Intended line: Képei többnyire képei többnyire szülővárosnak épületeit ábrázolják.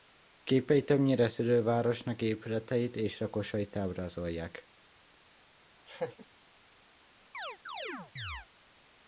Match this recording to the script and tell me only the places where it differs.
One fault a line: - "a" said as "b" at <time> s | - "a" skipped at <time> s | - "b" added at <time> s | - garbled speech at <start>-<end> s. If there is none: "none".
- "képei többnyire szülővárosnak épületeit" said as "szülővárosnak épületeit és lakosait" at 1.2 s